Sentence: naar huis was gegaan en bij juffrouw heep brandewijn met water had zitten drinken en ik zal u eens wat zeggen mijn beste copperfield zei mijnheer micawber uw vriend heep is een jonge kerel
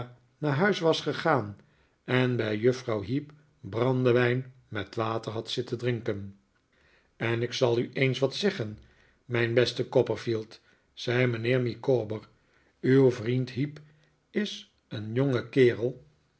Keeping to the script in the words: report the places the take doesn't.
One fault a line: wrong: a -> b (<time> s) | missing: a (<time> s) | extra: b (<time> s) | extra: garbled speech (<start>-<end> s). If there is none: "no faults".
no faults